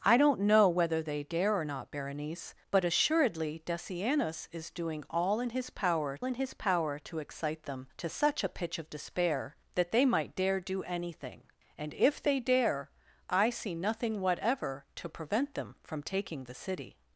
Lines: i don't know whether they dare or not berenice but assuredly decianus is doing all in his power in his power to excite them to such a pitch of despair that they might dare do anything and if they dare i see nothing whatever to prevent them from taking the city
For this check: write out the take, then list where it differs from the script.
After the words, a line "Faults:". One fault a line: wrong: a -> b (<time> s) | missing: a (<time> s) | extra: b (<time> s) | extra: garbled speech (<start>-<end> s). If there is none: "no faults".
i don't know whether they dare or not berenice but assuredly decianus is doing all in his power in his power to excite them to such a pitch of despair that they might dare do anything and if they dare i see nothing whatever to prevent them from taking the city
Faults:
no faults